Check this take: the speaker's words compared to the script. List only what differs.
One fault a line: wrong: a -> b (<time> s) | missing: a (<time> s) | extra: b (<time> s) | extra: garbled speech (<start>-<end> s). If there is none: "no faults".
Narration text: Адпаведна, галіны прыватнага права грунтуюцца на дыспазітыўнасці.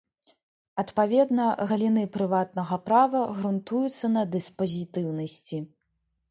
no faults